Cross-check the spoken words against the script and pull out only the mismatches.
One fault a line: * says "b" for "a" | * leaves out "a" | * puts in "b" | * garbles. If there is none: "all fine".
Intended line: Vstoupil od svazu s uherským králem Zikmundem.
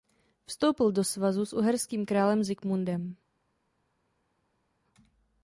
* says "do" for "od"